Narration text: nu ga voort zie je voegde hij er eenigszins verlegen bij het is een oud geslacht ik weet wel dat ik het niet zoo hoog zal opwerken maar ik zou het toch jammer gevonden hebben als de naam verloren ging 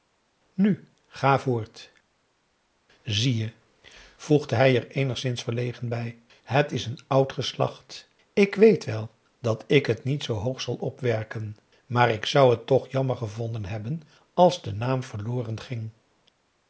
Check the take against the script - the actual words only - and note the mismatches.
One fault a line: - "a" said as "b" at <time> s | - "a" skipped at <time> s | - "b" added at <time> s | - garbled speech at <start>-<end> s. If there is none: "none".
none